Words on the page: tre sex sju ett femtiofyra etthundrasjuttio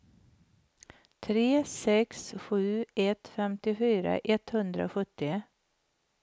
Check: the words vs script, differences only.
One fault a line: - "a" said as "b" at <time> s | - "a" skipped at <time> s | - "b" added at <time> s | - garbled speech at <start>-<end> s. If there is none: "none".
none